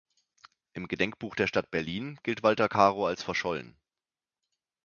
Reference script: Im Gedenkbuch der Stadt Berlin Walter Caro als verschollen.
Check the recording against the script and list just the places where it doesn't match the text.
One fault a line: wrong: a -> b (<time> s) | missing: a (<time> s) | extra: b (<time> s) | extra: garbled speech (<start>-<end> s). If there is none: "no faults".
extra: gilt (2.2 s)